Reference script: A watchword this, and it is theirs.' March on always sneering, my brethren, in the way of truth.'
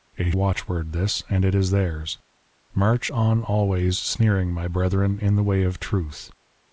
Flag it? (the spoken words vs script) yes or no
no